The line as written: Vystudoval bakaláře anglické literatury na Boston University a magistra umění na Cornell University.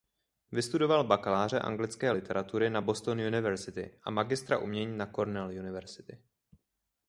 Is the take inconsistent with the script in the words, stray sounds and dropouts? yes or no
no